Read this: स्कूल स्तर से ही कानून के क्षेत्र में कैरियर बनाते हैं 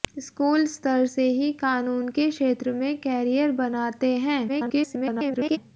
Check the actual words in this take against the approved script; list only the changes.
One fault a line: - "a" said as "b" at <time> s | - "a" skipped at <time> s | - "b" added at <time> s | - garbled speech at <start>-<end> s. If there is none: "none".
- garbled speech at 4.5-5.6 s